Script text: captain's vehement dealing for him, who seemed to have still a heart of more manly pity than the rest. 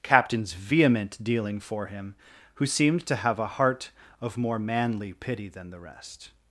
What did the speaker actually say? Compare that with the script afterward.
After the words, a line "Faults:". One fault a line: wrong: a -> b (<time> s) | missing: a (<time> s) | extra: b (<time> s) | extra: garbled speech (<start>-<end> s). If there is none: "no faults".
captain's vehement dealing for him, who seemed to have a heart of more manly pity than the rest.
Faults:
missing: still (3.4 s)